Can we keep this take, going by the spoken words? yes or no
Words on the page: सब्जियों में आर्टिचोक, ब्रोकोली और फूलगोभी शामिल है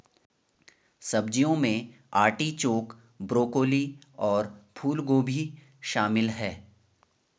yes